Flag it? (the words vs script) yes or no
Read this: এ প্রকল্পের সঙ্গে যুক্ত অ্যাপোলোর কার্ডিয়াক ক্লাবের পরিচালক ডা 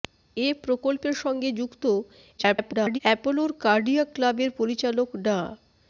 yes